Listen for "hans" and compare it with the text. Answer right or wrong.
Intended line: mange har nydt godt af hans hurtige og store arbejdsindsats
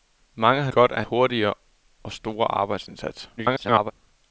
wrong